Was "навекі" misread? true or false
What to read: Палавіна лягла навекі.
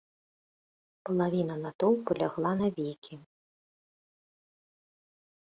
false